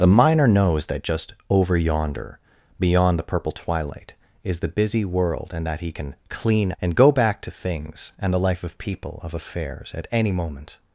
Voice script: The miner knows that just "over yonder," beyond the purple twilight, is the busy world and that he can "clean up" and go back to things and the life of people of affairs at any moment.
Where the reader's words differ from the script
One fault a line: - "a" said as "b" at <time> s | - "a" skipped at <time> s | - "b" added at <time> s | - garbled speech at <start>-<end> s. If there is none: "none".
- "up" skipped at 6.7 s